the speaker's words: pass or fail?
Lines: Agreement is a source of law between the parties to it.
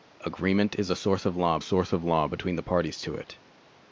fail